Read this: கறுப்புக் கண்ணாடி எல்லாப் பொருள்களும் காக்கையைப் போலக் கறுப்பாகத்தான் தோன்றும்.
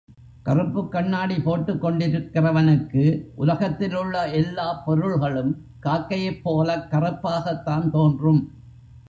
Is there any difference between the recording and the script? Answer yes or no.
yes